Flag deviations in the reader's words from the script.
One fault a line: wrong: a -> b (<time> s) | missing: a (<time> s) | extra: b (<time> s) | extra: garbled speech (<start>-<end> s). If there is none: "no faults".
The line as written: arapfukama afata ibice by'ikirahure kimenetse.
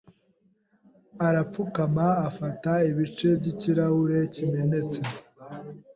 no faults